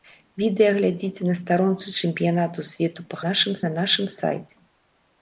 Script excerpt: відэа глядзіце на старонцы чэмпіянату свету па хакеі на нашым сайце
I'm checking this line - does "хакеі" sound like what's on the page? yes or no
no